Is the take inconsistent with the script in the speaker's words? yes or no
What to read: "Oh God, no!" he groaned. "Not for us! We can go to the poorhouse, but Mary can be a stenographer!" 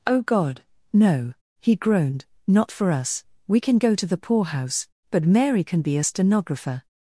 no